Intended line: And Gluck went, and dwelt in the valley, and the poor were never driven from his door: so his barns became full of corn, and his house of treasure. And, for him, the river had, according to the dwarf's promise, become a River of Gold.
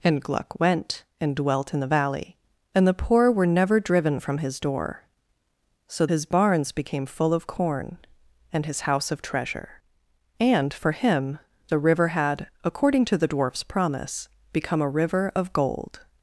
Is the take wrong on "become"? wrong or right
right